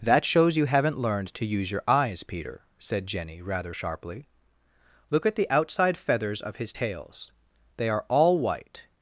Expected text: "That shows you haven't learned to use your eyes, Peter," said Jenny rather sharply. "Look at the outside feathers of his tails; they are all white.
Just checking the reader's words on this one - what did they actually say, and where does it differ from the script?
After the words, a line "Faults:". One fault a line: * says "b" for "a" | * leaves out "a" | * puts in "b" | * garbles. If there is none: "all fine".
"That shows you haven't learned to use your eyes, Peter," said Jenny rather sharply. "Look at the outside feathers of his tails; they are all white.
Faults:
all fine